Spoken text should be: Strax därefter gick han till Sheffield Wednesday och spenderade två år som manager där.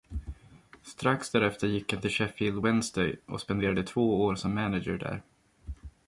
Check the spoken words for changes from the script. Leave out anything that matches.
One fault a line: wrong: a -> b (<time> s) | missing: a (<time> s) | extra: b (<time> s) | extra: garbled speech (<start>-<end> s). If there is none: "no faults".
no faults